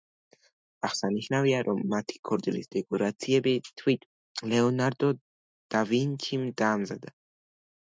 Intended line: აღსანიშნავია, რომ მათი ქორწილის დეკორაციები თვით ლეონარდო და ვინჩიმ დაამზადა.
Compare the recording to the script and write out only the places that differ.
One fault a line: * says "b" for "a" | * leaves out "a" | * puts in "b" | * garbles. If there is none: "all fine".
all fine